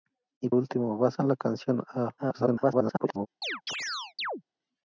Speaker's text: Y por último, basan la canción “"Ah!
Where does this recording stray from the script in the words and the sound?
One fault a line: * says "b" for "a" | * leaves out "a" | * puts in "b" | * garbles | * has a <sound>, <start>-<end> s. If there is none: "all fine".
* leaves out "por"
* garbles
* has a chirp, 3.4-4.4 s